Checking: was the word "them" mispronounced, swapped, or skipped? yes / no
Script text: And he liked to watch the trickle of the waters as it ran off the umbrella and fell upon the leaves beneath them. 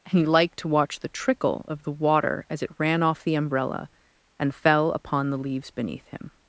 yes